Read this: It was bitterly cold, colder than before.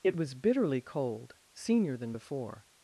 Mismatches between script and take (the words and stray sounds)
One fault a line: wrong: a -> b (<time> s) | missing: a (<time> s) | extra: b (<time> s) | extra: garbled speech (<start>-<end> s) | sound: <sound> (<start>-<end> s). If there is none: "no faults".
wrong: colder -> senior (1.5 s)